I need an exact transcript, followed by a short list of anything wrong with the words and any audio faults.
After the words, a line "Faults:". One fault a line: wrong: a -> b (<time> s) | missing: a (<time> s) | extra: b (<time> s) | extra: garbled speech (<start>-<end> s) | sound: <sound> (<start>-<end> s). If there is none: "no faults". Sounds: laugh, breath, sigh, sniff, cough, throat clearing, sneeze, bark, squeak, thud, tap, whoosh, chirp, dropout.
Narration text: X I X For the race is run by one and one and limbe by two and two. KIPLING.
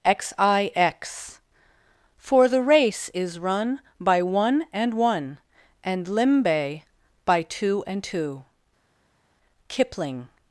X I X For the race is run by one and one and limbe by two and two. KIPLING.
Faults:
no faults